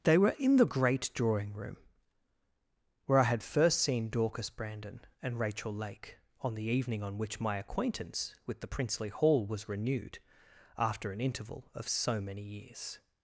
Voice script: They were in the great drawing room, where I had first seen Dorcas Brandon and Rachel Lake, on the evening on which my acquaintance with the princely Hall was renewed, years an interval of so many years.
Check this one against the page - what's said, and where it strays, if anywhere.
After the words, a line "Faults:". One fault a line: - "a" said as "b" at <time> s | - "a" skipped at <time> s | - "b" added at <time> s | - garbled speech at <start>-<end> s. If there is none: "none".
They were in the great drawing room, where I had first seen Dorcas Brandon and Rachel Lake, on the evening on which my acquaintance with the princely Hall was renewed, after an interval of so many years.
Faults:
- "years" said as "after" at 10.8 s